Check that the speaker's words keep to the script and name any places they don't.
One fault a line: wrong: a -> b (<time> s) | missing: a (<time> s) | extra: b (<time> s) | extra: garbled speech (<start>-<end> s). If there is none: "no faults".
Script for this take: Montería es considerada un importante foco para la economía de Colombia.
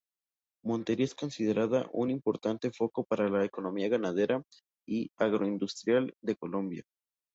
extra: ganadera y agroindustrial (3.9 s)